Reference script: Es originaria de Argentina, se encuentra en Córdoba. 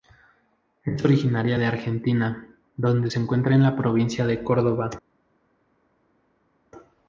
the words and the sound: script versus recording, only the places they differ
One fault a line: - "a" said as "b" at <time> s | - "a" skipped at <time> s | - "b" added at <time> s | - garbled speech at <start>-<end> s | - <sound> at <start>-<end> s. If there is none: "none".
- "donde" added at 2.8 s
- "la provincia de" added at 3.6 s